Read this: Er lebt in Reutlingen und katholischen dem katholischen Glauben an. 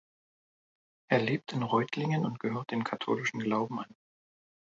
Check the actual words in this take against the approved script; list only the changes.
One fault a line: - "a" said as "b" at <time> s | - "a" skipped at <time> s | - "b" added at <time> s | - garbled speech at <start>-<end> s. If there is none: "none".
- "katholischen" said as "gehört" at 2.4 s